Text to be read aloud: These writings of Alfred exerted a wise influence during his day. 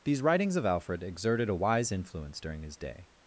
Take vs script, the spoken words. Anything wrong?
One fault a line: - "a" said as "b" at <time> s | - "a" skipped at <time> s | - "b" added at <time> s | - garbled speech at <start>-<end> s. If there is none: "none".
none